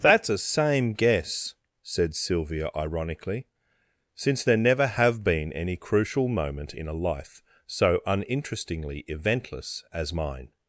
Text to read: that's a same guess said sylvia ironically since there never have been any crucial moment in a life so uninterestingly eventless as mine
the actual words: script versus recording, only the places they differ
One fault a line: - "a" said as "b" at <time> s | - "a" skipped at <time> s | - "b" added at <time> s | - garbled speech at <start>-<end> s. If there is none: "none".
none